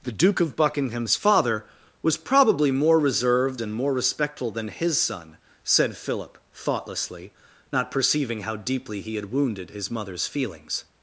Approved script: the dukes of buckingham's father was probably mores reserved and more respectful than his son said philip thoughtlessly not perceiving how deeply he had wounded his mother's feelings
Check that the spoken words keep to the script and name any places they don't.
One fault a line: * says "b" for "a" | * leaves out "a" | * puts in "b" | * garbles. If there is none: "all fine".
* says "duke" for "dukes"
* says "more" for "mores"